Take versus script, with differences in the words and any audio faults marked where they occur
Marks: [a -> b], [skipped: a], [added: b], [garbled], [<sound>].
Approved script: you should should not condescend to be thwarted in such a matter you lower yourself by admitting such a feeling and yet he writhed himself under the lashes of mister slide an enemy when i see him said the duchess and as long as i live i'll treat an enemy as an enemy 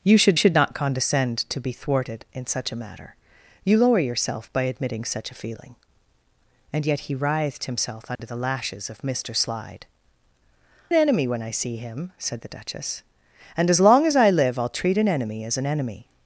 you should should not condescend to be thwarted in such a matter you lower yourself by admitting such a feeling and yet he writhed himself under [dropout] the lashes of mister slide an enemy when i see him said the duchess and as long as i live i'll treat an enemy as an enemy